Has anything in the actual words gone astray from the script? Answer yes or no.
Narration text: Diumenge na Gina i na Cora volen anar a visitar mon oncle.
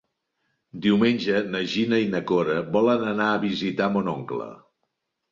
no